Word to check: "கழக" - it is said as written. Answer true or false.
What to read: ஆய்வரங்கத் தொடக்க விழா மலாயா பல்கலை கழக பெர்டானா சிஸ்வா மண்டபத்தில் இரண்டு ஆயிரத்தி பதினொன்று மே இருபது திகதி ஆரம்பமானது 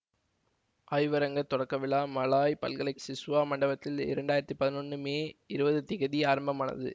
false